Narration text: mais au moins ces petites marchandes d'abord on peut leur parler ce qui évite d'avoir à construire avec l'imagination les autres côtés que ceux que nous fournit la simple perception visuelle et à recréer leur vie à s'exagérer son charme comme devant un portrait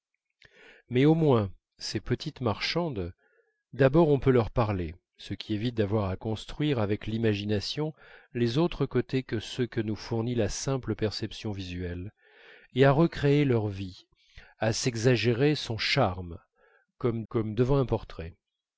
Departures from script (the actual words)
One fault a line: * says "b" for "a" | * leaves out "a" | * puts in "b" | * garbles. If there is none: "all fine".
* puts in "comme"